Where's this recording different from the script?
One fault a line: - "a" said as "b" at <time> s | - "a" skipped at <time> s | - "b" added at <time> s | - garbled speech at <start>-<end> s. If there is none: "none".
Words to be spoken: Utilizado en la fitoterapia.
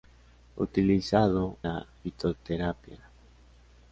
- "en" skipped at 1.6 s